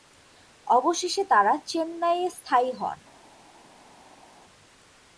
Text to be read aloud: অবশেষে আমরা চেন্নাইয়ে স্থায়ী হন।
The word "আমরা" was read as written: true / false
false